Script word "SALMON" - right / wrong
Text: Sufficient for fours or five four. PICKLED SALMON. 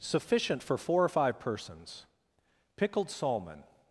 right